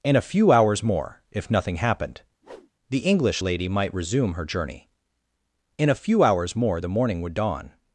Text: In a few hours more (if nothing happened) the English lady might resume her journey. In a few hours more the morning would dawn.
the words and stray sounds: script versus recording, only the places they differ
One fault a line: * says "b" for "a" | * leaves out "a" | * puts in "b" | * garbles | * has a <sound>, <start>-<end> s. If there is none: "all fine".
* has a whoosh, 2.4-2.7 s